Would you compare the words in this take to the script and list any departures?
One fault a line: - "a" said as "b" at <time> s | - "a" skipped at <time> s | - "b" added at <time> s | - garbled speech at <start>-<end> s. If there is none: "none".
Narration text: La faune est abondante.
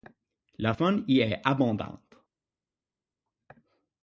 - "y" added at 1.1 s